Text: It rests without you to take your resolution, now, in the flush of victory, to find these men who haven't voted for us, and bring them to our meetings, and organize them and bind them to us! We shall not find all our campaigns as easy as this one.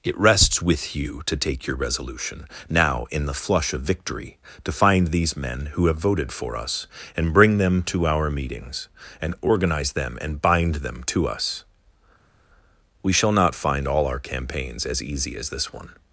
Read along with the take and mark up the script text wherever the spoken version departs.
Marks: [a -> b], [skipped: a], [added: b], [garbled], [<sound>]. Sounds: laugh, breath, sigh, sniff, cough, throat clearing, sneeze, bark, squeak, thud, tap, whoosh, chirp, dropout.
It rests [without -> with] you to take your resolution, now, in the flush of victory, to find these men who [haven't -> have] voted for us, and bring them to our meetings, and organize them and bind them to us! We shall not find all our campaigns as easy as this one.